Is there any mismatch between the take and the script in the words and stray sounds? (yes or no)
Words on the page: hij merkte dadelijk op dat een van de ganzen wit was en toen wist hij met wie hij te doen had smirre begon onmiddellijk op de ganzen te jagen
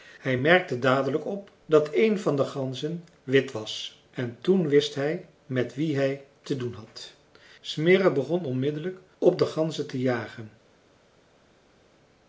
no